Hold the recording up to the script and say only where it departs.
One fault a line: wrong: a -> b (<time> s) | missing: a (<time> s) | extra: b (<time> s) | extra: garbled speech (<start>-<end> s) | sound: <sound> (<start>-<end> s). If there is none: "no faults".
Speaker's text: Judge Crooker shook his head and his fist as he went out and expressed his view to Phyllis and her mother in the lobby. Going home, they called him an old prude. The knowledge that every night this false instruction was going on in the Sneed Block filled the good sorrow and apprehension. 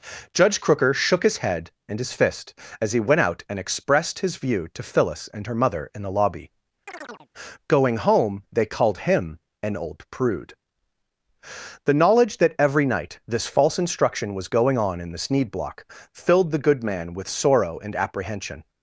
sound: chirp (6.9-7.3 s)
extra: man with (16.8 s)